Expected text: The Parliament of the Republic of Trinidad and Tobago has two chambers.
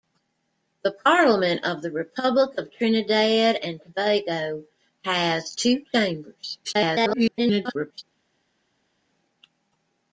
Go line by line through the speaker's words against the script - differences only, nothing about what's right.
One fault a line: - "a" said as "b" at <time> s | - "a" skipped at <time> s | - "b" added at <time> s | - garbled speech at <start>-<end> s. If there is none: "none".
- garbled speech at 6.6-8.0 s